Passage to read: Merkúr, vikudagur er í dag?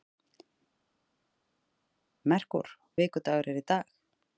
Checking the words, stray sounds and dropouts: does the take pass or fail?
pass